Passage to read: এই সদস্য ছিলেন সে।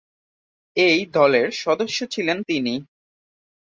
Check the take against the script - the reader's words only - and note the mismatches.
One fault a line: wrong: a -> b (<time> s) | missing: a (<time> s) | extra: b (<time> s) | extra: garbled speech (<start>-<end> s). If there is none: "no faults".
extra: দলের (1.1 s)
wrong: সে -> তিনি (2.4 s)